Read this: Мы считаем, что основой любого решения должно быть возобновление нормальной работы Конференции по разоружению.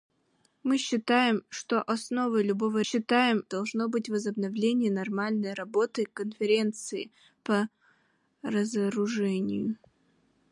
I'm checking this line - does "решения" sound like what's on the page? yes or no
no